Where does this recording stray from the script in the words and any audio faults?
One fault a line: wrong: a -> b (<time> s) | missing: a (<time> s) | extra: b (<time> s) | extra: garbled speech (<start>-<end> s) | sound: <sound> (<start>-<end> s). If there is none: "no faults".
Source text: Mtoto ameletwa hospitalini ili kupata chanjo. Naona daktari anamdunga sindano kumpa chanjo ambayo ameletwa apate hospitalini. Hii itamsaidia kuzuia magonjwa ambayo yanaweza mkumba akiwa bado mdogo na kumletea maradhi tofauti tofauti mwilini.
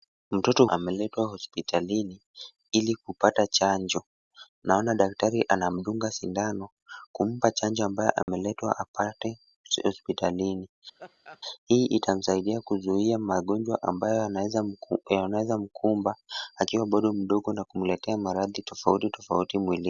sound: dropout (8.2-8.3 s)
sound: laugh (11.0-11.4 s)